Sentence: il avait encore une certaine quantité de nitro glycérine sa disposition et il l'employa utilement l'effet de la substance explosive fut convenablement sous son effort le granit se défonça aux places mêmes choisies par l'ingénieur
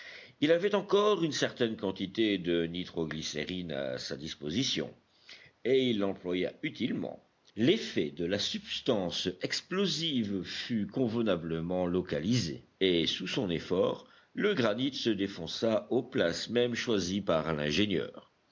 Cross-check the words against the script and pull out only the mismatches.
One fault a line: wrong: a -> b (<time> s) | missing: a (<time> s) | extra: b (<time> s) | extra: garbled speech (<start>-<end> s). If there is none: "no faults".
extra: à (3.7 s)
extra: localisé et (11.8 s)